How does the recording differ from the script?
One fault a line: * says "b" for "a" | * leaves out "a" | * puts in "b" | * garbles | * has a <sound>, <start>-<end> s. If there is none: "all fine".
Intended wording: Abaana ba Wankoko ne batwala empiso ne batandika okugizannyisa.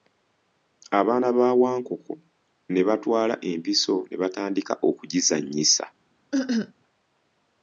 * has a cough, 6.3-6.7 s